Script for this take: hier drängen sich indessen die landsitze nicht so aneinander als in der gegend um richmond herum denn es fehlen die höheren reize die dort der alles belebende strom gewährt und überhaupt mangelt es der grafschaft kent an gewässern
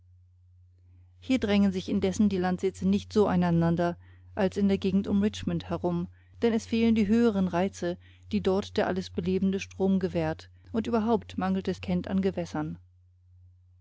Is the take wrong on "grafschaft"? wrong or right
wrong